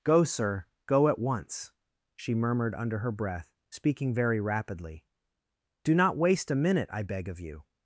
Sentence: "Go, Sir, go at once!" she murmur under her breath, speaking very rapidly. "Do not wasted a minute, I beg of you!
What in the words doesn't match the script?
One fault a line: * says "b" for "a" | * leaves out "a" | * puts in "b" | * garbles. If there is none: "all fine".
* says "murmured" for "murmur"
* says "waste" for "wasted"